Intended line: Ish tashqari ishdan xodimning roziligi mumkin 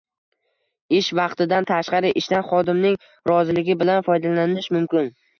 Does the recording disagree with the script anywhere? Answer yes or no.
yes